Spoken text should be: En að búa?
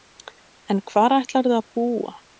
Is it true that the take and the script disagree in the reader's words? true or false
true